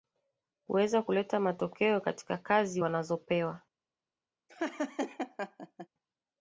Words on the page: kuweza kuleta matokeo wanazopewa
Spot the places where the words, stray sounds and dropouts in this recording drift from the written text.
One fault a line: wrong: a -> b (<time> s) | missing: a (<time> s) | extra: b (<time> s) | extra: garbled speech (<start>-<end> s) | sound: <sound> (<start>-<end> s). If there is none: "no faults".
extra: katika kazi (2.0 s)
sound: laugh (4.5-5.9 s)